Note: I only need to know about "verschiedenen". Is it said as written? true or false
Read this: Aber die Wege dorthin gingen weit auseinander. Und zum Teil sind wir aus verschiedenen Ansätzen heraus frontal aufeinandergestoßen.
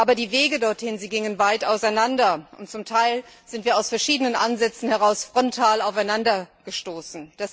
true